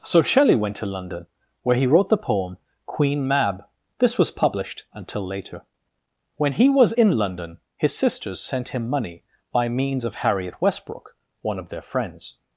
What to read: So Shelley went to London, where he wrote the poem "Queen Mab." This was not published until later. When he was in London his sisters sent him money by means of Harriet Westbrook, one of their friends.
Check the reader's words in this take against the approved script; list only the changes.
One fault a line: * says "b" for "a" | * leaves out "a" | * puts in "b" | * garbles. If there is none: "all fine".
* leaves out "not"